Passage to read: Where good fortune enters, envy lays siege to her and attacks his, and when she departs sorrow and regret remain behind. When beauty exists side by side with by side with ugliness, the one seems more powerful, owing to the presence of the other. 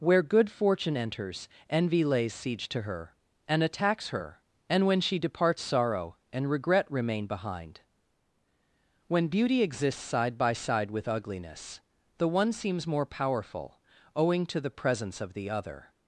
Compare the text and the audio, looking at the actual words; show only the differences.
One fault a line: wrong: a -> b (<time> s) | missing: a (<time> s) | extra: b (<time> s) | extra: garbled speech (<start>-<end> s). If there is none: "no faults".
wrong: his -> her (4.1 s)
missing: by side with (11.1 s)